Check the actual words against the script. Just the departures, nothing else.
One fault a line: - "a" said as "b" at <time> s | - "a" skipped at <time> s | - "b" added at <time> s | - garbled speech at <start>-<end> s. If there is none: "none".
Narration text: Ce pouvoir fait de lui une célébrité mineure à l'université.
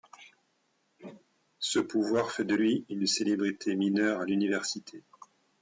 none